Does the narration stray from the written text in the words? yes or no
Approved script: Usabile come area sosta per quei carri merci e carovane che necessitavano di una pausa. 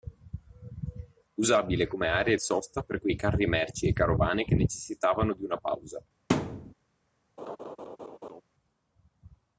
no